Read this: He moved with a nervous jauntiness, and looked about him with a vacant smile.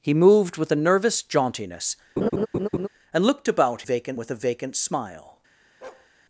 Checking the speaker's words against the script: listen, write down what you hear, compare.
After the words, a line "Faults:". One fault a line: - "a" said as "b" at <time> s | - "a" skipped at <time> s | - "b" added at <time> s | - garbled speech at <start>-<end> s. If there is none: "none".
He moved with a nervous jauntiness, and looked about vacant with a vacant smile.
Faults:
- "him" said as "vacant" at 3.8 s